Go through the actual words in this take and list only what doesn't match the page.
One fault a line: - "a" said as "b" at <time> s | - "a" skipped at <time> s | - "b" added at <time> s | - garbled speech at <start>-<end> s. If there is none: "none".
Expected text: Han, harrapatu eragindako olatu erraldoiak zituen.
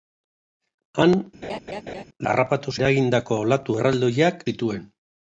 none